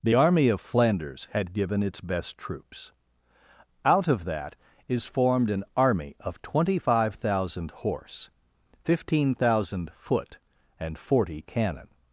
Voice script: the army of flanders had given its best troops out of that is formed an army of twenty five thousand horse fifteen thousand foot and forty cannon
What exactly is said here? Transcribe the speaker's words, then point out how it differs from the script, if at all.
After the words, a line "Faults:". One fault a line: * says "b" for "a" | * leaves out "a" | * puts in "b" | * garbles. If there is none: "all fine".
the army of flanders had given its best troops out of that is formed an army of twenty five thousand horse fifteen thousand foot and forty cannon
Faults:
all fine